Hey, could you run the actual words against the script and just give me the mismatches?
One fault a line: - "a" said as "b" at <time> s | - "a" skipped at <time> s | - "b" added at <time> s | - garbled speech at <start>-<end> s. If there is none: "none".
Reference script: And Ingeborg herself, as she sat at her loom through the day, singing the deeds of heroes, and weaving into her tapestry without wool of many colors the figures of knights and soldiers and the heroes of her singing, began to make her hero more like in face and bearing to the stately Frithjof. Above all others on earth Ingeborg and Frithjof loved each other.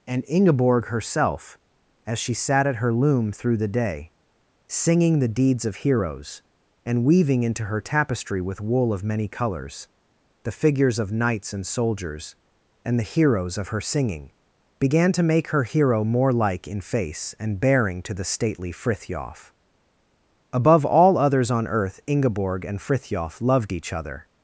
- "without" said as "with" at 8.4 s